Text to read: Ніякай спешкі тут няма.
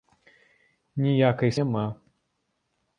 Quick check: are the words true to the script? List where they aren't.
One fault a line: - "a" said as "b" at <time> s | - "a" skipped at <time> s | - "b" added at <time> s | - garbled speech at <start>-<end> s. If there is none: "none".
- "спешкі тут" skipped at 1.5 s